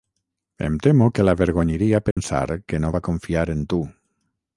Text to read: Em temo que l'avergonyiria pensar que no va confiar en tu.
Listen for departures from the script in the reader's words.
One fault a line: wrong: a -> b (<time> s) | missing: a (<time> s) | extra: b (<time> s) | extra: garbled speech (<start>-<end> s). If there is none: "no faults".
no faults